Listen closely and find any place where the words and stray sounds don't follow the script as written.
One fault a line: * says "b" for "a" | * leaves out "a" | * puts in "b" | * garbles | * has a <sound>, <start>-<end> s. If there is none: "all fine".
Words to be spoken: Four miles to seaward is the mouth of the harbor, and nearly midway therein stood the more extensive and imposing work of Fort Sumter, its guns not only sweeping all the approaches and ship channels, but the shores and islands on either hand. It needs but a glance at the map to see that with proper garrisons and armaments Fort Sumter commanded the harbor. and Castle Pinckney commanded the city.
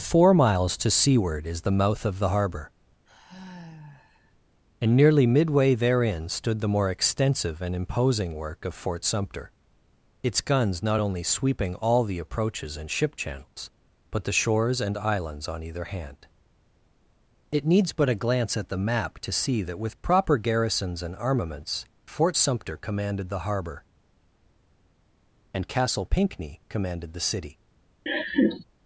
* has a sigh, 3.0-4.4 s
* has a laugh, 28.1-28.6 s